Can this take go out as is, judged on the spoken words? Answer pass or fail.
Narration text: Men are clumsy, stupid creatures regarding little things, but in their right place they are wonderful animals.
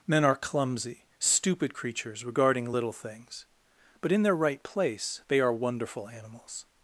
pass